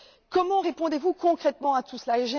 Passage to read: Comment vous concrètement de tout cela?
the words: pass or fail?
fail